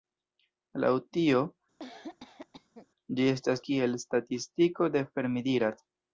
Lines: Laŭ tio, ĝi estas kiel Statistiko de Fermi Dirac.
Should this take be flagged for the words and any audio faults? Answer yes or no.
yes